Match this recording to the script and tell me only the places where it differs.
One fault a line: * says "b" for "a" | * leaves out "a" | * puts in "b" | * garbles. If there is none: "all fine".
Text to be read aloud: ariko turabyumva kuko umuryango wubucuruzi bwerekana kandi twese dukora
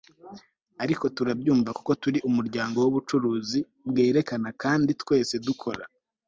* puts in "turi"